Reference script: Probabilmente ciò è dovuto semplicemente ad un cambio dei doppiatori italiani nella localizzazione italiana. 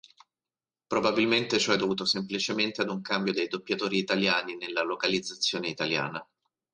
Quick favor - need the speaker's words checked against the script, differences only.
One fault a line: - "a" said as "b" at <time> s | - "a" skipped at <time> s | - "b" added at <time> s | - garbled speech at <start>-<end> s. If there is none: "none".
none